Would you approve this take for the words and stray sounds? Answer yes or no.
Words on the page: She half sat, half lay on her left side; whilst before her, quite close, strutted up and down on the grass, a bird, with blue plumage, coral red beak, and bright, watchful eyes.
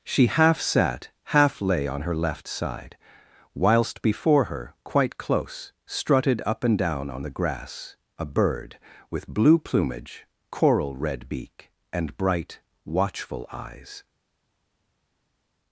yes